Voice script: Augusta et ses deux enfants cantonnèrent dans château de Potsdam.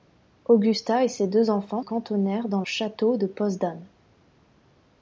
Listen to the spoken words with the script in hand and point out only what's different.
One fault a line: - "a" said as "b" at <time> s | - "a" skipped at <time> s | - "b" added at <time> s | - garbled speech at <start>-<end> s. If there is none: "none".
none